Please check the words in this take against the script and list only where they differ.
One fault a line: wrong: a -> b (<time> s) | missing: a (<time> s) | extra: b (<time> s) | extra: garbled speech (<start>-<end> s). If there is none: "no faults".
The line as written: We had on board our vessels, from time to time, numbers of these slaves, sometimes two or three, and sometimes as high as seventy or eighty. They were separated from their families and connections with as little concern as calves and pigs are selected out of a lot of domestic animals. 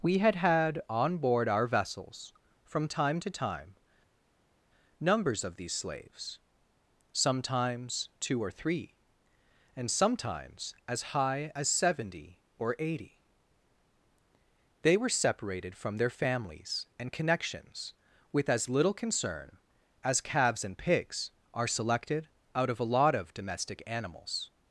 extra: had (0.3 s)